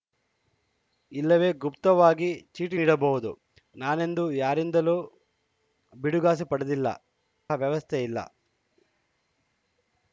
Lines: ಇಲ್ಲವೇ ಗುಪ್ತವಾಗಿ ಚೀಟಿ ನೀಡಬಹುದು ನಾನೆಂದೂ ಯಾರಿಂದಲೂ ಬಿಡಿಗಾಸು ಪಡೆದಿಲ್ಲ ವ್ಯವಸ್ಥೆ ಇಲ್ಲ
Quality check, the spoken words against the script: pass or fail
pass